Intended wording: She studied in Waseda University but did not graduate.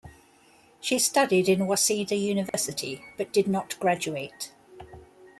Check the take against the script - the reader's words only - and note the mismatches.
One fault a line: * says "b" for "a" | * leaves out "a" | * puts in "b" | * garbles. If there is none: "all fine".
all fine